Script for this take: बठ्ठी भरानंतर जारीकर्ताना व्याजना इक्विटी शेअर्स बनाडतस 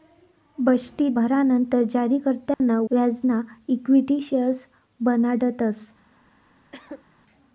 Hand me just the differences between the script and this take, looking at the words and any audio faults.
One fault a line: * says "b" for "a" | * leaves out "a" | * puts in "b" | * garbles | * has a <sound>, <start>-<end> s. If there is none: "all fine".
* has a dropout, 2.5-2.6 s
* has a cough, 6.7-7.0 s